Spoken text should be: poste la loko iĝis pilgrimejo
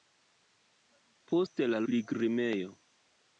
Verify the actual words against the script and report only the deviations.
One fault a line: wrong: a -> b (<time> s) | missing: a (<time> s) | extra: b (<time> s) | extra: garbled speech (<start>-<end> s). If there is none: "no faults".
missing: loko iĝis (1.8 s)